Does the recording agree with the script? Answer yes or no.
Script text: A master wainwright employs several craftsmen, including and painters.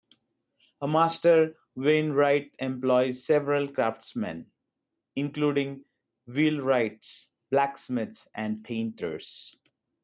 no